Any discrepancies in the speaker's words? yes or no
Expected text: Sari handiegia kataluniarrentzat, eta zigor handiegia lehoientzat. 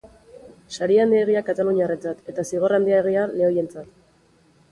no